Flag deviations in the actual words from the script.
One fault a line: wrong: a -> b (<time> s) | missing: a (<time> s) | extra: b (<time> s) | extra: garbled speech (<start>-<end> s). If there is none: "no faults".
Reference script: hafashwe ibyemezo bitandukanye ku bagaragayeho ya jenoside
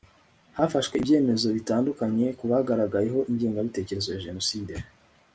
extra: ingengabitekerezo (3.3 s)